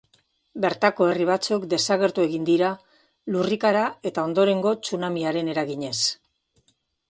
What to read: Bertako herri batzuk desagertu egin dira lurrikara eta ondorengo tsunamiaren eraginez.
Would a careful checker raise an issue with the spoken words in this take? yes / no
no